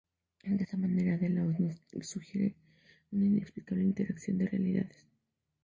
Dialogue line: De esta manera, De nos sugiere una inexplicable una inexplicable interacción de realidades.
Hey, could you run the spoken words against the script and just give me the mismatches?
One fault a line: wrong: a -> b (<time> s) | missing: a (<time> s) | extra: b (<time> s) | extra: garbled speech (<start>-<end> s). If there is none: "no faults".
extra: la Hoz (1.3 s)
missing: una inexplicable (3.8 s)